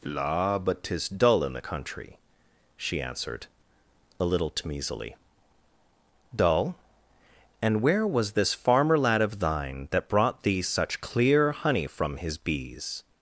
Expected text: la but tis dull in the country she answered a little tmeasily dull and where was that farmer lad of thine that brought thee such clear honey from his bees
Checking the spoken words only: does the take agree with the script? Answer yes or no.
no